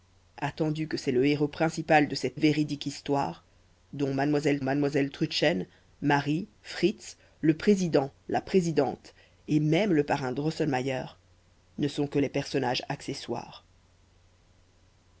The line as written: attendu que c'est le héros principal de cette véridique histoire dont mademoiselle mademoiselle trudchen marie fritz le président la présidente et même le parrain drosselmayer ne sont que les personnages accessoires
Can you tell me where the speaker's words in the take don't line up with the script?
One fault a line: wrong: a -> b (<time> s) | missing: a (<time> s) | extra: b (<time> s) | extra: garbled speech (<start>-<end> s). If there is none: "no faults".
no faults